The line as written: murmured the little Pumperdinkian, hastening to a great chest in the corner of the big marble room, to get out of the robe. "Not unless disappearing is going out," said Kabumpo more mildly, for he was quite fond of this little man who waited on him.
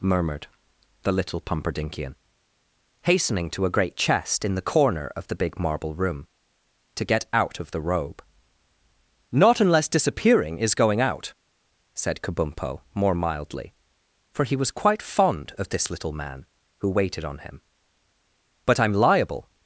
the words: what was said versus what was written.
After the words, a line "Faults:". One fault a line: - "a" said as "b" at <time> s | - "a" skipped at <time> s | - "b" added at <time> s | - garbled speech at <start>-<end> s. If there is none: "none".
murmured the little Pumperdinkian, hastening to a great chest in the corner of the big marble room, to get out of the robe. "Not unless disappearing is going out," said Kabumpo more mildly, for he was quite fond of this little man who waited on him. "But I'm liable
Faults:
- "But I'm liable" added at 18.6 s